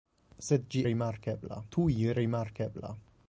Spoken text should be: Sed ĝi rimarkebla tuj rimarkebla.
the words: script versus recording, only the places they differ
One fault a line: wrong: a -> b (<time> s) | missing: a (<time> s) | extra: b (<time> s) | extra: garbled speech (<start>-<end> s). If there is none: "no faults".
no faults